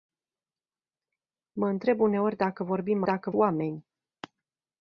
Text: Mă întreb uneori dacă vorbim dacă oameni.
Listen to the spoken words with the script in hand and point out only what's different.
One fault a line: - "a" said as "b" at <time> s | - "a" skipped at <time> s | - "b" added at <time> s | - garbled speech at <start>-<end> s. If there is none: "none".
none